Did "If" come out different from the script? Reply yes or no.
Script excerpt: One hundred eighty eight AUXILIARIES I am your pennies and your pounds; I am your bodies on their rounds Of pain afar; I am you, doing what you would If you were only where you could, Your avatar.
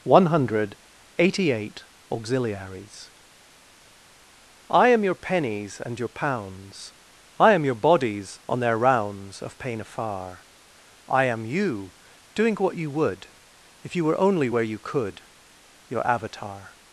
no